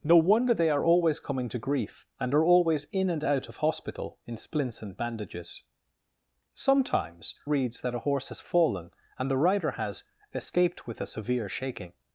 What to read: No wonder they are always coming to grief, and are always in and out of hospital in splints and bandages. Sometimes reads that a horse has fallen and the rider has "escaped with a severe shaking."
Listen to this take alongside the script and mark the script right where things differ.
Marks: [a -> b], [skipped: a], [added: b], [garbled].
No wonder they are always coming to grief, and are always in and out of hospital in splints and bandages. Sometimes reads that a horse has fallen and the rider has "escaped with a severe shaking."